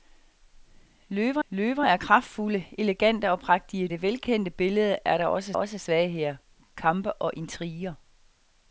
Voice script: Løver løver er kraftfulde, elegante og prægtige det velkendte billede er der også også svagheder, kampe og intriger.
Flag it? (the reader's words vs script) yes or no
no